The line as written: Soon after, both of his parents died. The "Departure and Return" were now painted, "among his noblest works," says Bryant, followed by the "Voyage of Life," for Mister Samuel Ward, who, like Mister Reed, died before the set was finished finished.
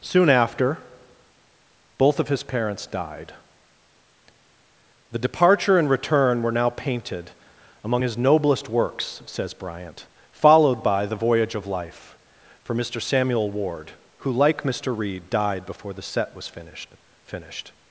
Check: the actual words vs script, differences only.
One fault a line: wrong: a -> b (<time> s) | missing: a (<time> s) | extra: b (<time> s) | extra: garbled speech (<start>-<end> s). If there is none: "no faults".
no faults